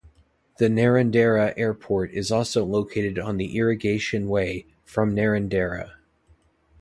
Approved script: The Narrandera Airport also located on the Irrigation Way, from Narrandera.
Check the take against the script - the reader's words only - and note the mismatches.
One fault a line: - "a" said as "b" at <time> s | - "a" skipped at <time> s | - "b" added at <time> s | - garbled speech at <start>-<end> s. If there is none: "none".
- "is" added at 2.1 s